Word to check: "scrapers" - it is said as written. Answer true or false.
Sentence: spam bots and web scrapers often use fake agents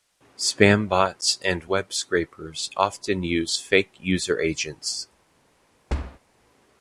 true